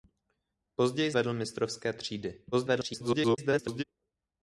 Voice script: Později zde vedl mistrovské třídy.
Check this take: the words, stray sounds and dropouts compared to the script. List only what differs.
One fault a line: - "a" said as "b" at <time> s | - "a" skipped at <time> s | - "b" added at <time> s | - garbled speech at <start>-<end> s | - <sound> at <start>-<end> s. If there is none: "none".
- "zde" skipped at 1.1 s
- garbled speech at 2.5-3.8 s